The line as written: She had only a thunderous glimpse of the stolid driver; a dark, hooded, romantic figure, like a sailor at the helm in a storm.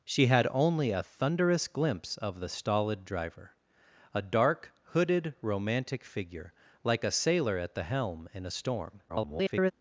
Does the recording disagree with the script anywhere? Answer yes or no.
yes